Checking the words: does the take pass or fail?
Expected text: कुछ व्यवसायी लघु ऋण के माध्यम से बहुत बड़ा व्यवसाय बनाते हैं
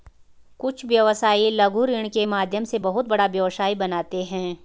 pass